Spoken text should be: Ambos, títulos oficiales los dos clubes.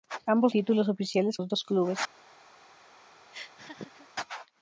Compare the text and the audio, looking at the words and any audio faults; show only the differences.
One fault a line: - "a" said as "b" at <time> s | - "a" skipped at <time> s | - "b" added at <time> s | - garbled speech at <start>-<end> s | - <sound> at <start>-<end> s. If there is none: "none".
- laugh at 3.3-4.1 s